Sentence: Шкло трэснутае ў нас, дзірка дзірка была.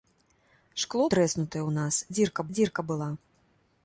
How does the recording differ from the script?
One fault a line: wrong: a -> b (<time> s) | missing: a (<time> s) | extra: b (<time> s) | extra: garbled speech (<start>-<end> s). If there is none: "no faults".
no faults